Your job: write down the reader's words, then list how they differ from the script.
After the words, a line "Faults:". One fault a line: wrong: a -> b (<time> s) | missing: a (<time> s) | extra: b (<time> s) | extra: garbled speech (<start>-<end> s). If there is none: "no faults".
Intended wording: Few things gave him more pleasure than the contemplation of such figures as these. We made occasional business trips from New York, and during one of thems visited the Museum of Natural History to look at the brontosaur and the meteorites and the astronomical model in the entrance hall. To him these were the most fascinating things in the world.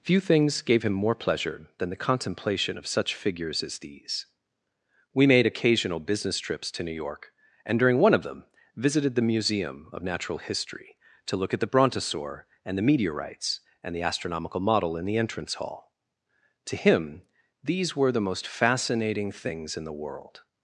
Few things gave him more pleasure than the contemplation of such figures as these. We made occasional business trips to New York, and during one of them visited the Museum of Natural History to look at the brontosaur and the meteorites and the astronomical model in the entrance hall. To him these were the most fascinating things in the world.
Faults:
wrong: from -> to (6.7 s)
wrong: thems -> them (8.2 s)